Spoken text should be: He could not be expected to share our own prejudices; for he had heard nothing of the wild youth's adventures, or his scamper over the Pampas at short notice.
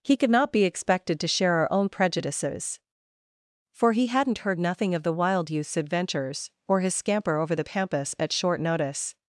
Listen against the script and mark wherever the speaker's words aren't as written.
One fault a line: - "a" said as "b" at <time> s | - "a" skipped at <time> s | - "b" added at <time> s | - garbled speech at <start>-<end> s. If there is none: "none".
- "had" said as "hadn't" at 4.1 s